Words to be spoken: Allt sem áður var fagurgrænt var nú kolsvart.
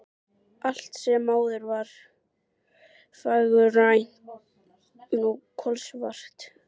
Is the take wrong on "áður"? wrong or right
right